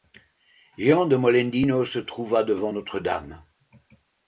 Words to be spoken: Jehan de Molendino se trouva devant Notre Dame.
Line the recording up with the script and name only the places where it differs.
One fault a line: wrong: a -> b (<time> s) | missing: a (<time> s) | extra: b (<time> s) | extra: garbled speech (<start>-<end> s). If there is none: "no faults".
no faults